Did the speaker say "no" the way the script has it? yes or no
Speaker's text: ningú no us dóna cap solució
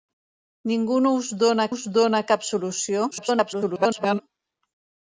yes